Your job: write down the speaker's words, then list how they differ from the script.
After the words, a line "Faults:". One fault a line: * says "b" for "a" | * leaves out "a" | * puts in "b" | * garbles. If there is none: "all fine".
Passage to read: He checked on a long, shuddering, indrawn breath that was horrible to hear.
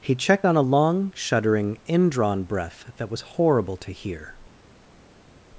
He checked on a long, shuddering, indrawn breath that was horrible to hear.
Faults:
all fine